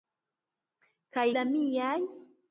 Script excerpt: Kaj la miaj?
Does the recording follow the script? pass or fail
pass